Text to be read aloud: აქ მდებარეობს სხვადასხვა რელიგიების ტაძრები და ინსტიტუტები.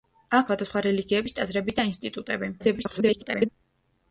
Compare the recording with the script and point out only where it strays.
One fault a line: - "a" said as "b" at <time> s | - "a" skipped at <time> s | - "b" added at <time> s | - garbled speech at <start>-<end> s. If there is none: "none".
- "მდებარეობს" skipped at 0.5 s
- garbled speech at 2.6-3.5 s